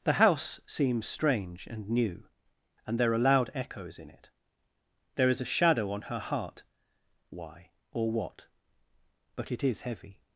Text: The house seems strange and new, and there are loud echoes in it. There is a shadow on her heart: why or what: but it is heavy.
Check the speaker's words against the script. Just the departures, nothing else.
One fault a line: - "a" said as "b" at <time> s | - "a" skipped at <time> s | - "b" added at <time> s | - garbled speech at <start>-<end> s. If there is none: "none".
none